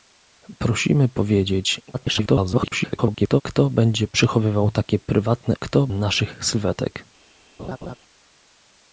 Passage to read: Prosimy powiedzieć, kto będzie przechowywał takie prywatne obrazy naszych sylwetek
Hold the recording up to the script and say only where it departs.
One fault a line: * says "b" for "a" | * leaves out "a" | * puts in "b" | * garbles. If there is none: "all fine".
* garbles
* says "kto" for "obrazy"